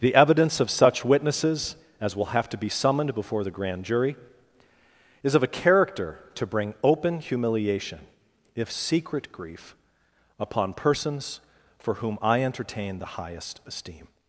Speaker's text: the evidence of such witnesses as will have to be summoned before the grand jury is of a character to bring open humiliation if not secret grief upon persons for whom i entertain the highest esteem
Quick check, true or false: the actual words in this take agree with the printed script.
false